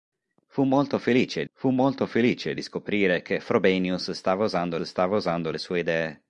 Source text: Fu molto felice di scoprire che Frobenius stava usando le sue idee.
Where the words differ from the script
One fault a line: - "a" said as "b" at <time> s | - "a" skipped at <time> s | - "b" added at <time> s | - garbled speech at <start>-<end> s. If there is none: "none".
- "fu molto felice" added at 1.5 s
- "stava usando" added at 4.8 s